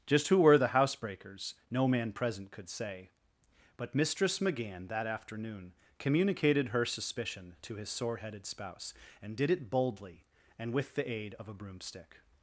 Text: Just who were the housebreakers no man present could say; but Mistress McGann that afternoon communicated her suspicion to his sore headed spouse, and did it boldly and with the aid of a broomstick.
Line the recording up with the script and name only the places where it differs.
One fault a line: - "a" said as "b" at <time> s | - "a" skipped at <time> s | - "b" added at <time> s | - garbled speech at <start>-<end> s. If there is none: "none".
none